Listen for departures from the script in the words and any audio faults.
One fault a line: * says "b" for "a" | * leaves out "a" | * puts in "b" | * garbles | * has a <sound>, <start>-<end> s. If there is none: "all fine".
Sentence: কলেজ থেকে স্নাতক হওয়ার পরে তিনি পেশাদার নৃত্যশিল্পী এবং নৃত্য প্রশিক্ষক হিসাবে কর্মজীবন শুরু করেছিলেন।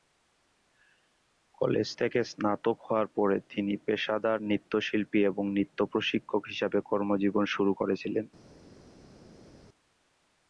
all fine